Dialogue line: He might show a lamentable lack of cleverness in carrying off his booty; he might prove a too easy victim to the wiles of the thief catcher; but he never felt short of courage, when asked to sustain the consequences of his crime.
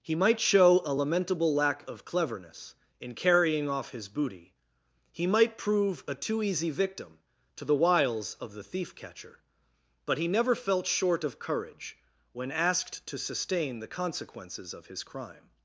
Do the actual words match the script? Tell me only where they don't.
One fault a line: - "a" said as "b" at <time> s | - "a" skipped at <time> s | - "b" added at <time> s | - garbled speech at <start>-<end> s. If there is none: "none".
none